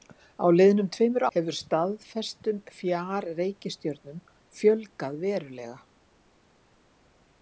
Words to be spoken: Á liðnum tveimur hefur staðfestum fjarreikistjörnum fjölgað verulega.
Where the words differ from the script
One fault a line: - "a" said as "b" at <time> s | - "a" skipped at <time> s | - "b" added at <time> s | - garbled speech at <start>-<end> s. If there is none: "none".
none